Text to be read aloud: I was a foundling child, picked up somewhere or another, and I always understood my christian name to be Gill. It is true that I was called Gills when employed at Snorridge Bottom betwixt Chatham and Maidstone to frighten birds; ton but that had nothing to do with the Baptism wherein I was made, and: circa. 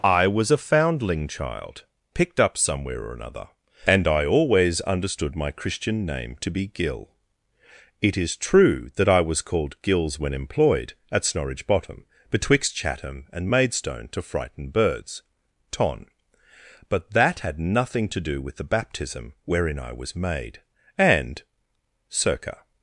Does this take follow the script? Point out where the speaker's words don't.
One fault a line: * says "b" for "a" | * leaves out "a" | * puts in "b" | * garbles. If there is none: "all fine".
all fine